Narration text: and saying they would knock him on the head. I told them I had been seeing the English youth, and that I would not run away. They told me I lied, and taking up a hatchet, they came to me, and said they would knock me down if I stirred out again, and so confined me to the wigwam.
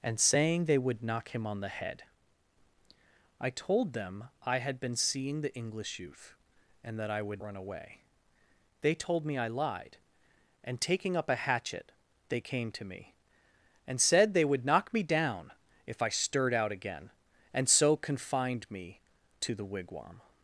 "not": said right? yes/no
no